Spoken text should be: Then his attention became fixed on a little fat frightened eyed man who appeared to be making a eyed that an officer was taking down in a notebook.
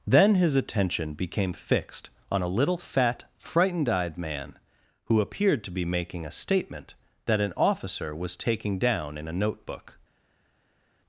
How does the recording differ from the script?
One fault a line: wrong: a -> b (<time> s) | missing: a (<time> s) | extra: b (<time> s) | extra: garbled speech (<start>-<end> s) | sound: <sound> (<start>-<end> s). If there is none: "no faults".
wrong: eyed -> statement (6.3 s)